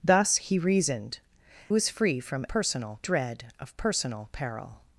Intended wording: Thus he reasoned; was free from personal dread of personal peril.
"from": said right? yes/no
yes